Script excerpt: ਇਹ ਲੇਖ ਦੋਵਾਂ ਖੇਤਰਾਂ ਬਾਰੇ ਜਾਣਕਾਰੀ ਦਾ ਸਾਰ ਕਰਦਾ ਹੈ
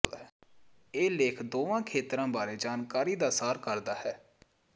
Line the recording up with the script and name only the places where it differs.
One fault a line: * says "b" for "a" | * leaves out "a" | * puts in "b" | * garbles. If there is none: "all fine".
all fine